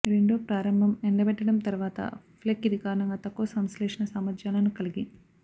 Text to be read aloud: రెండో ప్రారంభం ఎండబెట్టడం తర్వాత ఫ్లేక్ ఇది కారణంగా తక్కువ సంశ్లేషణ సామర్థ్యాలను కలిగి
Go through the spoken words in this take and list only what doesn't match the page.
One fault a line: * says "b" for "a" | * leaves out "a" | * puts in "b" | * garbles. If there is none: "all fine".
all fine